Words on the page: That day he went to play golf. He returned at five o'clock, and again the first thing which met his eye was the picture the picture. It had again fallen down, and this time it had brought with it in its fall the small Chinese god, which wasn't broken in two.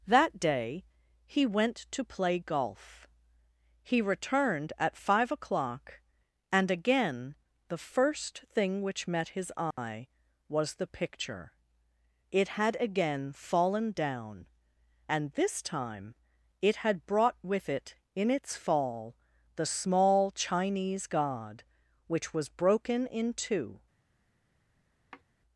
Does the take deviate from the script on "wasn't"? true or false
true